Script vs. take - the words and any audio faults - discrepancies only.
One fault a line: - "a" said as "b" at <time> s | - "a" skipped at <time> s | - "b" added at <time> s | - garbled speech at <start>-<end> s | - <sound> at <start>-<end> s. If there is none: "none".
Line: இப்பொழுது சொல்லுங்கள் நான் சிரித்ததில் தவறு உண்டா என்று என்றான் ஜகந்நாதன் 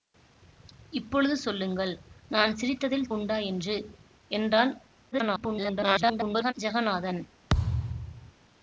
- "தவறு" skipped at 3.1 s
- garbled speech at 5.1-6.5 s
- thud at 7.5-8.3 s